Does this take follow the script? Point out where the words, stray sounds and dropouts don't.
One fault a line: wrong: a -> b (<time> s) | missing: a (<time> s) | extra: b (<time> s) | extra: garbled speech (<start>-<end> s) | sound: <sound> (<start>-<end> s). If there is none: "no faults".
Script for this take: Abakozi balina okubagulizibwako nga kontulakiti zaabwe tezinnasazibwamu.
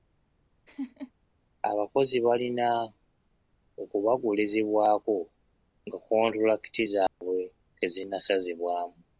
sound: laugh (0.7-1.1 s)
sound: dropout (7.1-7.2 s)